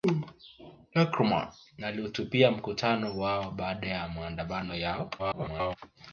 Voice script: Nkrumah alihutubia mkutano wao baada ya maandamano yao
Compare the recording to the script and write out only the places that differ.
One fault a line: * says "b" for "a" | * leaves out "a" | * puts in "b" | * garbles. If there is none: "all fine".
* garbles